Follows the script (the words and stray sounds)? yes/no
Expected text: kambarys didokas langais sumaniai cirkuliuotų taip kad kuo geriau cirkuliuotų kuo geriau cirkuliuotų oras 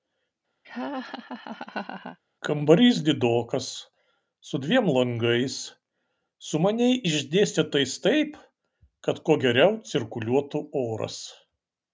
no